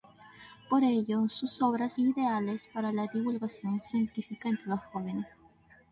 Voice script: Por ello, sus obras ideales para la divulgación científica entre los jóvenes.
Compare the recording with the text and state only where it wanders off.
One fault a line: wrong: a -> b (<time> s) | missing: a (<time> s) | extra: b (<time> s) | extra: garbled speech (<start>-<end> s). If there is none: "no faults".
no faults